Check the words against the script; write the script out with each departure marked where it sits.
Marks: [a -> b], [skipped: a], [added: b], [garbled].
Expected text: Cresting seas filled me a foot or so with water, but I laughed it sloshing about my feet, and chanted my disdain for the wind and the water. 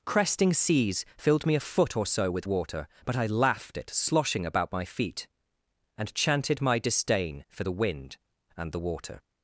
Cresting seas filled me a foot or so with water, but I laughed it sloshing about my feet, and chanted my disdain for the wind and the water.